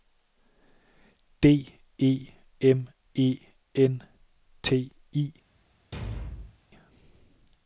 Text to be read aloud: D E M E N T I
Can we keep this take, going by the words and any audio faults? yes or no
no